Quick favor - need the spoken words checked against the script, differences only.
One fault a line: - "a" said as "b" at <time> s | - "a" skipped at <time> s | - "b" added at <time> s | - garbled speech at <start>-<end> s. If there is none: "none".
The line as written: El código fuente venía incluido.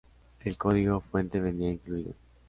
none